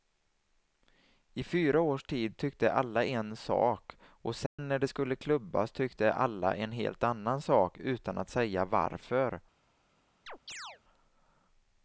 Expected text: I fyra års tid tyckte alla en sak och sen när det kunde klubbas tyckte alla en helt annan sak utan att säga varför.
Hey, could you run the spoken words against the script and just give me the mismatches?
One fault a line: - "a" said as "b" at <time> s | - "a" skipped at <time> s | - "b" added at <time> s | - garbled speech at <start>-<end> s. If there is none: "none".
- "kunde" said as "skulle" at 4.8 s